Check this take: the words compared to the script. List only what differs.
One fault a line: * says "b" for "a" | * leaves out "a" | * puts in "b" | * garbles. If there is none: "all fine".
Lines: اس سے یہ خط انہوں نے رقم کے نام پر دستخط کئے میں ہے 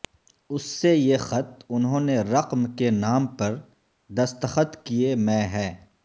all fine